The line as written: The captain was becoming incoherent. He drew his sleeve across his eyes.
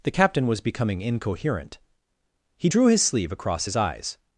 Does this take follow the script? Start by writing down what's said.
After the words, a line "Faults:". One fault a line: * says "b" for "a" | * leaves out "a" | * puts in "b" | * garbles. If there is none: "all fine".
The captain was becoming incoherent. He drew his sleeve across his eyes.
Faults:
all fine